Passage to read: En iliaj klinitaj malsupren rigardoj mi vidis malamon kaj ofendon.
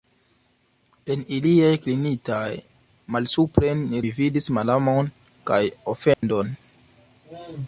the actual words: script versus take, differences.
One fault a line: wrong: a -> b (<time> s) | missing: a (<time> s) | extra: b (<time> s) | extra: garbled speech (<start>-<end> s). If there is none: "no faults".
missing: rigardoj (3.9 s)